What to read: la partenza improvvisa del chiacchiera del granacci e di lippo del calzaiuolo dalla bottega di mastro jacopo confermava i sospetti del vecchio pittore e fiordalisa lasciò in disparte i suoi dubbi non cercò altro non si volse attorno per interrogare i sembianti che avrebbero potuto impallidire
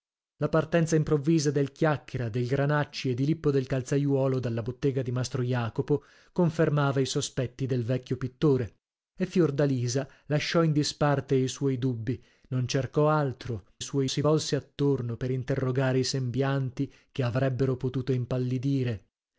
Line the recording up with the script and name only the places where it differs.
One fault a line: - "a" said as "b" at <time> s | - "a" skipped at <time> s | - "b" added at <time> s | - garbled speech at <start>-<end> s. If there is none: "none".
- "non" said as "suoi" at 13.8 s